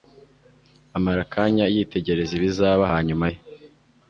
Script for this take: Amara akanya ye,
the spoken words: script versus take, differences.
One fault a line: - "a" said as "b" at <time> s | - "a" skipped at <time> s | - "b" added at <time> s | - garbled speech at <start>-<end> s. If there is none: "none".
- "yitegereza ibizaba hanyuma" added at 1.7 s